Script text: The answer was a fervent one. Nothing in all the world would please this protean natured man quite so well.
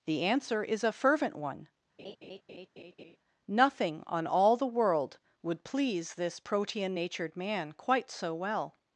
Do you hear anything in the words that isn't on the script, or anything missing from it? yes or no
yes